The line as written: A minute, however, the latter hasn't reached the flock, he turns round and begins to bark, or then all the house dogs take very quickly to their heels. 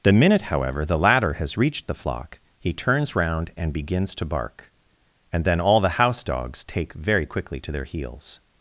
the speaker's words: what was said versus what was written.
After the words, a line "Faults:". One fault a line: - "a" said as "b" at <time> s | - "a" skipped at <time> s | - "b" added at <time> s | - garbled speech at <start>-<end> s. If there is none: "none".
The minute, however, the latter has reached the flock, he turns round and begins to bark, and then all the house dogs take very quickly to their heels.
Faults:
- "A" said as "The" at 0.0 s
- "hasn't" said as "has" at 1.3 s
- "or" said as "and" at 5.3 s